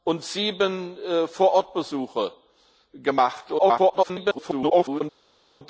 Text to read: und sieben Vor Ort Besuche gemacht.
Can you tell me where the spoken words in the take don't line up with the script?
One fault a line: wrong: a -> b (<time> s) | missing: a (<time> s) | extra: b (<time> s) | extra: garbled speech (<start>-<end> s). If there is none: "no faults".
extra: garbled speech (3.6-5.0 s)